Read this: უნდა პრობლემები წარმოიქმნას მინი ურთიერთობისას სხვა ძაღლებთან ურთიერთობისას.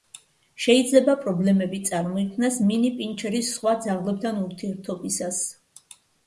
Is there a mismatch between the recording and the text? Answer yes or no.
yes